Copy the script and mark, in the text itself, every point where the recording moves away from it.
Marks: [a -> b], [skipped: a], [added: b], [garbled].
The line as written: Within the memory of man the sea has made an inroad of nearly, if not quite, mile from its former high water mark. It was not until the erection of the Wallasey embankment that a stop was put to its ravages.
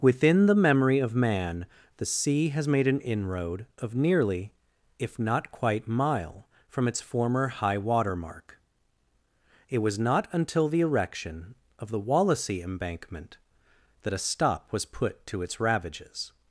Within the memory of man the sea has made an inroad of nearly, if not quite, mile from its former high water mark. It was not until the erection of the Wallasey embankment that a stop was put to its ravages.